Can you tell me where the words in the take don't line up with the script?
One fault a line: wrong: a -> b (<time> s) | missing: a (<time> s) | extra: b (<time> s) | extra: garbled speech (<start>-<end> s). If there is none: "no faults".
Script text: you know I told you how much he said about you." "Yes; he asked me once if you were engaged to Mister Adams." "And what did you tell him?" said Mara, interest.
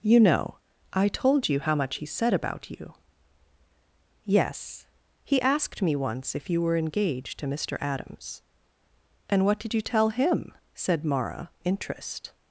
no faults